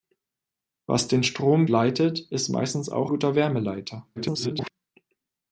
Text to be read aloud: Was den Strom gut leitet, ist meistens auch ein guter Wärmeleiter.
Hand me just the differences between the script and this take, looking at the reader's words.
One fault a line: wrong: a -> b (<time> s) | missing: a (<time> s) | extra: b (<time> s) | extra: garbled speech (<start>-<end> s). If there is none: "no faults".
missing: gut (1.7 s)
missing: ein (3.1 s)
extra: garbled speech (4.2-4.7 s)